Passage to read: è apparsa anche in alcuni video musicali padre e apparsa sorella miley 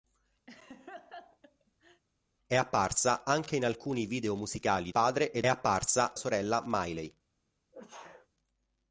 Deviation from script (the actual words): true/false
false